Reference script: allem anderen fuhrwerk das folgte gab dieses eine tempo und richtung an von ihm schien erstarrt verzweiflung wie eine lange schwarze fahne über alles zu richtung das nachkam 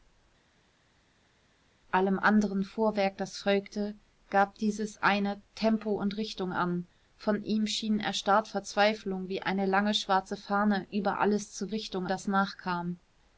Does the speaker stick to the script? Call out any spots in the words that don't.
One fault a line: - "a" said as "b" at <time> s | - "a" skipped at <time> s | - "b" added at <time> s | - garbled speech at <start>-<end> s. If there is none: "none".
none